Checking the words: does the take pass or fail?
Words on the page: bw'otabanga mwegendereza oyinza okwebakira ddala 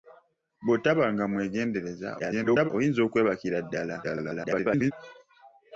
fail